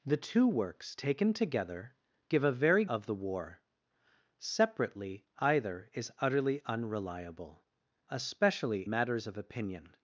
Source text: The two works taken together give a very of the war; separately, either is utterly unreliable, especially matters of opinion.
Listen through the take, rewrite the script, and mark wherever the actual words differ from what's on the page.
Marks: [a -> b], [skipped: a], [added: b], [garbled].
The two works taken together give a very of the war; separately, either is utterly unreliable, especially matters of opinion.